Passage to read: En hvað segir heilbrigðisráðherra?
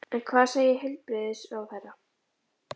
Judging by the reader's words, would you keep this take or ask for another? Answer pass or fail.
pass